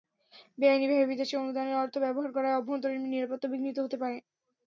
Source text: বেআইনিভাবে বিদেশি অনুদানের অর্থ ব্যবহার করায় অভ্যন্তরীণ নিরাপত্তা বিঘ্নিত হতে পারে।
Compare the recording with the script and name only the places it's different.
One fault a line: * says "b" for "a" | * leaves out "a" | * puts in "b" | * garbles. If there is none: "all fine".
all fine